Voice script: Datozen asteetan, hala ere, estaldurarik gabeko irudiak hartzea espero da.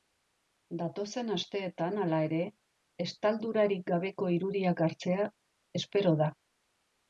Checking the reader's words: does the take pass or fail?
pass